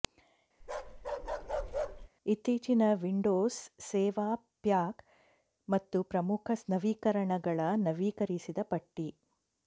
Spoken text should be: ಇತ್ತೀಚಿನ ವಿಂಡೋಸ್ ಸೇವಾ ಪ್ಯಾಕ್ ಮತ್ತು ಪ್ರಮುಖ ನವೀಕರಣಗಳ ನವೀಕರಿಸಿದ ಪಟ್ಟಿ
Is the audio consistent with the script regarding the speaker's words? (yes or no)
yes